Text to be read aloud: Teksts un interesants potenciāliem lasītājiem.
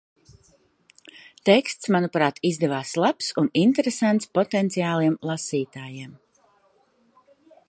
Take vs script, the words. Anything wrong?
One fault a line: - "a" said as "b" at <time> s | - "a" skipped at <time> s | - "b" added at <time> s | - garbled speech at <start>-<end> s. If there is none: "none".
- "manuprāt izdevās labs" added at 2.0 s